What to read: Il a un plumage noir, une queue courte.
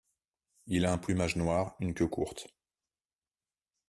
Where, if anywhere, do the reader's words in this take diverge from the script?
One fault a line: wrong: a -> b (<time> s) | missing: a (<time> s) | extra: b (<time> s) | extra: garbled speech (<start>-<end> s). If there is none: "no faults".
no faults